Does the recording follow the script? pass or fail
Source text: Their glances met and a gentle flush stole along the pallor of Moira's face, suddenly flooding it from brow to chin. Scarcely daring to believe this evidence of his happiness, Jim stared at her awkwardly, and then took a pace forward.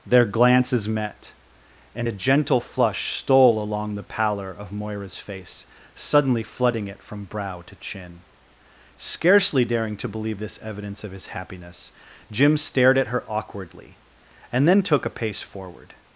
pass